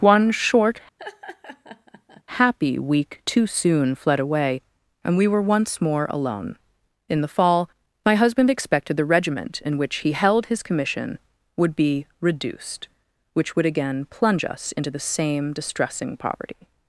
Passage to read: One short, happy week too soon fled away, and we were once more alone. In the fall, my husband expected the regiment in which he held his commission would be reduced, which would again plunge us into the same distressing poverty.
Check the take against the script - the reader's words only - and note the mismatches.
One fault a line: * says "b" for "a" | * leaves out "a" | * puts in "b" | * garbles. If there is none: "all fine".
all fine